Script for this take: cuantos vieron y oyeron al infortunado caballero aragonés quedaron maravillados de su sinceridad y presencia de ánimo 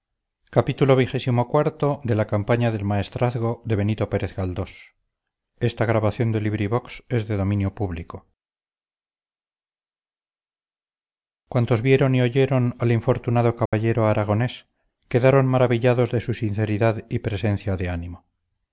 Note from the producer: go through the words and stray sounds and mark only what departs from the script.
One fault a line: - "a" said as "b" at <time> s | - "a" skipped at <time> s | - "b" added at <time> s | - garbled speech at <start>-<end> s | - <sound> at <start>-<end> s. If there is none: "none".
- dropout at 13.7-13.7 s